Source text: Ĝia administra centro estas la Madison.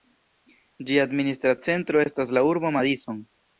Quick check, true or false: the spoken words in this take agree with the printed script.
false